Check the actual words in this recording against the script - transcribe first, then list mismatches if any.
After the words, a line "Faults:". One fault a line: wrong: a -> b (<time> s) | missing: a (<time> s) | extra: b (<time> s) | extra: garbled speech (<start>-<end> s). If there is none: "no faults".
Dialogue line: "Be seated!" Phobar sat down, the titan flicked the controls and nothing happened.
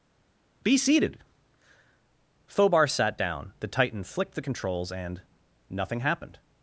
"Be seated!" Phobar sat down, the titan flicked the controls and nothing happened.
Faults:
no faults